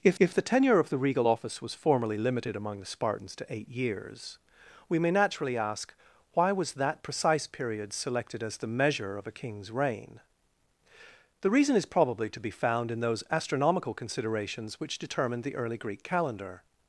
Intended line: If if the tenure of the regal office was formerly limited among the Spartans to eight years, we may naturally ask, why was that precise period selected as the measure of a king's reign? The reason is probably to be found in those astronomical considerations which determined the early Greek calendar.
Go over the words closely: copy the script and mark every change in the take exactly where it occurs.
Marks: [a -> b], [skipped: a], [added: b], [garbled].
If if the tenure of the regal office was formerly limited among the Spartans to eight years, we may naturally ask, why was that precise period selected as the measure of a king's reign? The reason is probably to be found in those astronomical considerations which determined the early Greek calendar.